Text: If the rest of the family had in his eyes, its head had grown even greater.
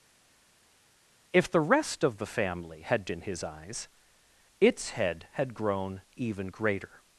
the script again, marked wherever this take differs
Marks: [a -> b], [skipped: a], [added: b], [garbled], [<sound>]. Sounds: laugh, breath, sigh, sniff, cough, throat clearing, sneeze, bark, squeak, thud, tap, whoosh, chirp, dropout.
If the rest of the family had in his eyes, its head had grown even greater.